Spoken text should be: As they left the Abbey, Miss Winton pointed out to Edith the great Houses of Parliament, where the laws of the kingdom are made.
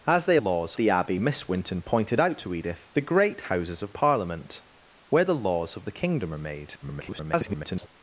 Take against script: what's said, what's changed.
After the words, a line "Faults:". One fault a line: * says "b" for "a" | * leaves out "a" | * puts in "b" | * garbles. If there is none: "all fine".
As they laws the Abbey, Miss Winton pointed out to Edith the great Houses of Parliament, where the laws of the kingdom are made. [garbled]
Faults:
* says "laws" for "left"
* garbles